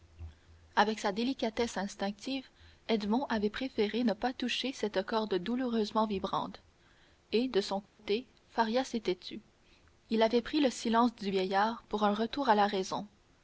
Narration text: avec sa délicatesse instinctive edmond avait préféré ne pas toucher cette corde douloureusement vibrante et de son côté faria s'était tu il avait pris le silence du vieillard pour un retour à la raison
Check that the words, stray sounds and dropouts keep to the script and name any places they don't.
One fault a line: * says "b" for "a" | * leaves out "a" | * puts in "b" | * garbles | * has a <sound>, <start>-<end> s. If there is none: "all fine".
* has a dropout, 7.9-8.0 s